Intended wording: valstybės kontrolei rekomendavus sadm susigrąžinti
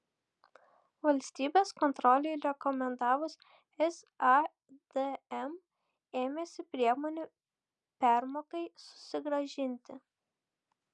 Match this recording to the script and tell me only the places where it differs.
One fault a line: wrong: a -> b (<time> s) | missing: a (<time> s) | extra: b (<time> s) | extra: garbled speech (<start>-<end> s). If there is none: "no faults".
extra: ėmėsi priemonių permokai (6.2 s)